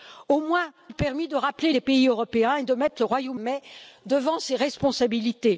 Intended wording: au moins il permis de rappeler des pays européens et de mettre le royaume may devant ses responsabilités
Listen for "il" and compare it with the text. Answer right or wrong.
right